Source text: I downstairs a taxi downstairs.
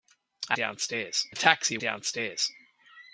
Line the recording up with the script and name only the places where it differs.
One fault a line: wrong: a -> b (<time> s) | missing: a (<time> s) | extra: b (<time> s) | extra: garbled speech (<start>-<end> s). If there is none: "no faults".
no faults